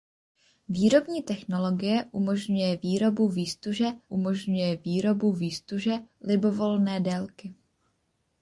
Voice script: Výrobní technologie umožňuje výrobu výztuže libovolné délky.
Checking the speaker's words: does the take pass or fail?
fail